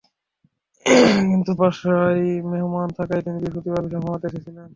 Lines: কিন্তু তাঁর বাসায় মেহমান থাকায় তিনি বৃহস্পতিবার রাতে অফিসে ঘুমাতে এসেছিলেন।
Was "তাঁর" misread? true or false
true